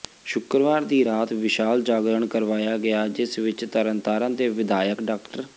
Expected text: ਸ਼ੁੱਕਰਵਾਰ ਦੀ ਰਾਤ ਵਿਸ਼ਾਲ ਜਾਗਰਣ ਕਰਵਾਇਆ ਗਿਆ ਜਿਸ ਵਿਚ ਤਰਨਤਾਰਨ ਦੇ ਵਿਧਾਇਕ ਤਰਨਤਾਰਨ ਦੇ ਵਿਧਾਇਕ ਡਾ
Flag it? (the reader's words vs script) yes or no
yes